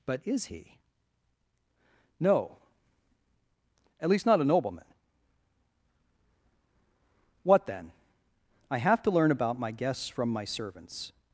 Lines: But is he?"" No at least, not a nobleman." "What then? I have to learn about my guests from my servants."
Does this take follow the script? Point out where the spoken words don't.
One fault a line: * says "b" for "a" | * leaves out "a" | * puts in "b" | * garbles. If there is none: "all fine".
all fine